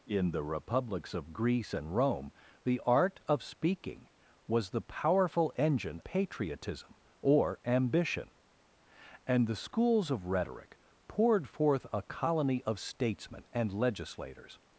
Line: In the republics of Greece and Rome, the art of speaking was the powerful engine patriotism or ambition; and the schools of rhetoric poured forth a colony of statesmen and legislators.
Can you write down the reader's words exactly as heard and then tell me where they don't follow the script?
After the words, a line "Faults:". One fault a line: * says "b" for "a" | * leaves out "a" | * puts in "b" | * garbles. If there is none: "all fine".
In the republics of Greece and Rome, the art of speaking was the powerful engine patriotism or ambition; and the schools of rhetoric poured forth a colony of statesmen and legislators.
Faults:
all fine